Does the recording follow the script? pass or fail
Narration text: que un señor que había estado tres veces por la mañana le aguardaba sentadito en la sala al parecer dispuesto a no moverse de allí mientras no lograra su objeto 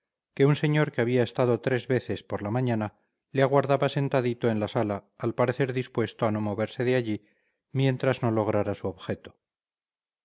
pass